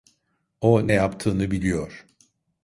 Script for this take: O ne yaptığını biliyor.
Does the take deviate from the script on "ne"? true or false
false